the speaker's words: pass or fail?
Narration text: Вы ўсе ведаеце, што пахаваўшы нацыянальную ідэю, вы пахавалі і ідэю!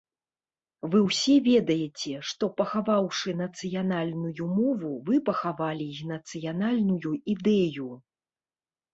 fail